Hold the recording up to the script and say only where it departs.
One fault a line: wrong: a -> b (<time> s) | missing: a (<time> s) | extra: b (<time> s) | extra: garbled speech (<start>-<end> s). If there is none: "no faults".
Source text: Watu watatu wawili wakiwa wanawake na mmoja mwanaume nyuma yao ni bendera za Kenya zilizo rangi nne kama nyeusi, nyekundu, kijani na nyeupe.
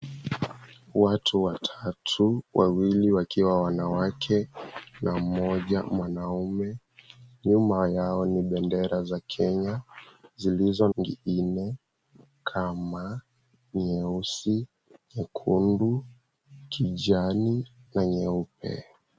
no faults